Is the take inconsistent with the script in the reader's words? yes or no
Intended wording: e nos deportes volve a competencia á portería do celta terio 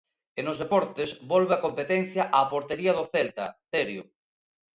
no